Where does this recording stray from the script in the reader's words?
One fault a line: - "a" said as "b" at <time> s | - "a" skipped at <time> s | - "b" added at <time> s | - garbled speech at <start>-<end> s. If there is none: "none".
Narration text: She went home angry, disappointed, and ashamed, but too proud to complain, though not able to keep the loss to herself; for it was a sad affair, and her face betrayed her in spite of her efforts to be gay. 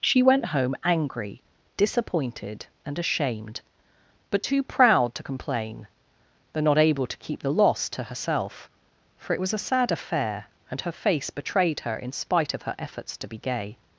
none